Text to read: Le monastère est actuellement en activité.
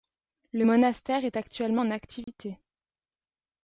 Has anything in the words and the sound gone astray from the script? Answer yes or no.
yes